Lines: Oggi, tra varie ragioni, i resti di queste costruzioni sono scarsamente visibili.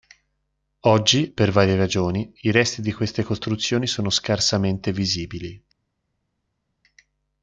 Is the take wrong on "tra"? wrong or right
wrong